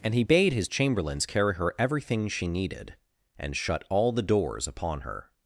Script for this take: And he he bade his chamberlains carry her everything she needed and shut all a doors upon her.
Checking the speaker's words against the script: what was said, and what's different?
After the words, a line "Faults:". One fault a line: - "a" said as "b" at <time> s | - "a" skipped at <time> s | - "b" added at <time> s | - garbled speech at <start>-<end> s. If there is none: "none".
And he bade his chamberlains carry her everything she needed and shut all the doors upon her.
Faults:
- "he" skipped at 0.2 s
- "a" said as "the" at 4.1 s